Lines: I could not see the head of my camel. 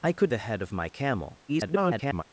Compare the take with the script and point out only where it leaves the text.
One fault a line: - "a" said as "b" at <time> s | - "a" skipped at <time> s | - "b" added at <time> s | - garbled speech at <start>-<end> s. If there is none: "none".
- "not see" skipped at 0.3 s
- garbled speech at 1.5-2.2 s